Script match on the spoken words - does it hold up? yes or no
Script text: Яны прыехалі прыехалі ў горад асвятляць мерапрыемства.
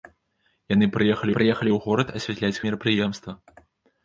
yes